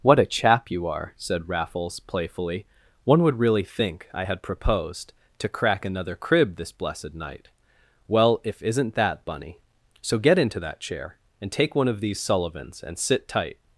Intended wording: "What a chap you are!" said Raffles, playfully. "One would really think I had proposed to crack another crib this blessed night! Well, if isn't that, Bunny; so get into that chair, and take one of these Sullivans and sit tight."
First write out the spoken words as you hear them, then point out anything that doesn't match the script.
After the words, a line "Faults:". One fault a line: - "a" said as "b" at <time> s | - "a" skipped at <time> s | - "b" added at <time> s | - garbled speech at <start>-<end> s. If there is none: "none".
"What a chap you are!" said Raffles, playfully. "One would really think I had proposed to crack another crib this blessed night! Well, if isn't that, Bunny; so get into that chair, and take one of these Sullivans and sit tight."
Faults:
none